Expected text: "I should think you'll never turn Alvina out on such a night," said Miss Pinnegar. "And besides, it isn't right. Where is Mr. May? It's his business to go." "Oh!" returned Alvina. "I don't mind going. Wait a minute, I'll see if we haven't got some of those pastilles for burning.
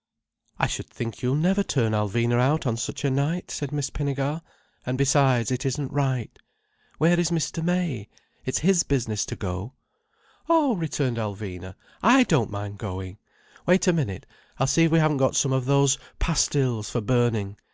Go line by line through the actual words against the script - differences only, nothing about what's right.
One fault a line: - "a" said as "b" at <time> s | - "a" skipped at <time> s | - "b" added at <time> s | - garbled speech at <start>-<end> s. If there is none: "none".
none